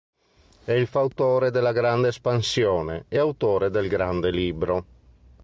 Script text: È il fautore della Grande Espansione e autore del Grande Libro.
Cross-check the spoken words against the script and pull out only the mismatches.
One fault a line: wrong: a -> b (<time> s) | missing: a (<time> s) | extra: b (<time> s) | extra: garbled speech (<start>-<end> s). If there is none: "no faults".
no faults